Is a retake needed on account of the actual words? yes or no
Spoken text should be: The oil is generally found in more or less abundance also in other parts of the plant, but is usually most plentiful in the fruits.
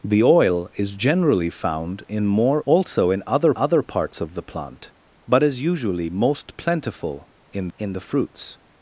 yes